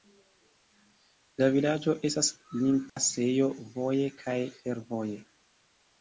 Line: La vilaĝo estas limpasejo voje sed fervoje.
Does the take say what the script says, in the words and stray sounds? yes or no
no